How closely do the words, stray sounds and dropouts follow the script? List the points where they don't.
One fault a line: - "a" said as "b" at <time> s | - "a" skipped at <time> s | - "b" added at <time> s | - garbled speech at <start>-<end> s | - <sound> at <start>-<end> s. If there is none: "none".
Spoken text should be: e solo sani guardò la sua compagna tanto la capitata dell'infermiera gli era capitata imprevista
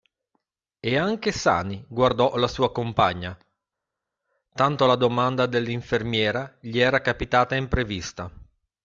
- "solo" said as "anche" at 1.0 s
- "capitata" said as "domanda" at 4.9 s